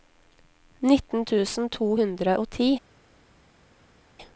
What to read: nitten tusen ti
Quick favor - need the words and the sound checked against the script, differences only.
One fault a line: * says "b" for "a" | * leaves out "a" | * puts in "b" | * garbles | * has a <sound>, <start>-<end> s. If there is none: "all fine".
* puts in "to hundre og"